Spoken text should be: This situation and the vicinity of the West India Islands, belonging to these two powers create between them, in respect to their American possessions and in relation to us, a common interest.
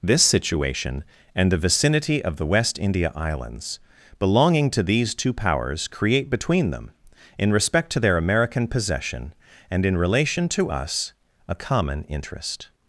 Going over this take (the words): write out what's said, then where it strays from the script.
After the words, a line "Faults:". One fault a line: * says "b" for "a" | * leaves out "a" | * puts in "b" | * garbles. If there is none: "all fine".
This situation and the vicinity of the West India Islands, belonging to these two powers create between them, in respect to their American possession and in relation to us, a common interest.
Faults:
* says "possession" for "possessions"